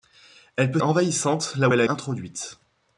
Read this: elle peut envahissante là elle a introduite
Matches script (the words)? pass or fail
pass